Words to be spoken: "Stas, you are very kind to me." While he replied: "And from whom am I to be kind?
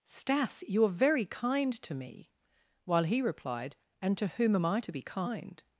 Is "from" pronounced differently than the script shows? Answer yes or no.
yes